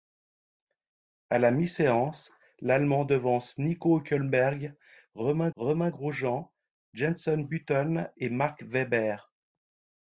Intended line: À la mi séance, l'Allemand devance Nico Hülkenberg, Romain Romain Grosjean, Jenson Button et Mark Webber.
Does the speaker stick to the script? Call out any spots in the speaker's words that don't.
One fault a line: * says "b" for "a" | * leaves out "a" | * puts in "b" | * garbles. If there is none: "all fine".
all fine